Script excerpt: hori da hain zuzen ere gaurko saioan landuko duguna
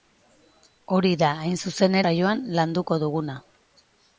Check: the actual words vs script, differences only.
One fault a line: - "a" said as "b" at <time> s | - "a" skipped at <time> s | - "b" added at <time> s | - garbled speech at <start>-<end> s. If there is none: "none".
- "ere gaurko" skipped at 2.0 s